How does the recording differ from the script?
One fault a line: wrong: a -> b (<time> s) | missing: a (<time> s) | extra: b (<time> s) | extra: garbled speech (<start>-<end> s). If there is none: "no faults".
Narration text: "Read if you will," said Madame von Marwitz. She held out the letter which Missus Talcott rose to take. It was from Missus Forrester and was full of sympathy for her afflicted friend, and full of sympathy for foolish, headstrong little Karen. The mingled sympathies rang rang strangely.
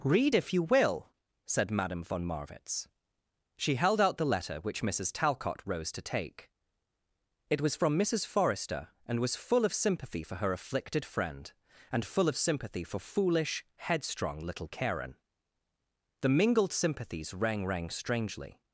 no faults